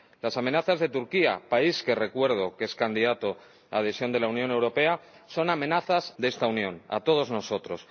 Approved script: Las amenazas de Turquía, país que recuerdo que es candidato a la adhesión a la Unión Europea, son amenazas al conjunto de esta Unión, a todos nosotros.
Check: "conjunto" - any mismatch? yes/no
yes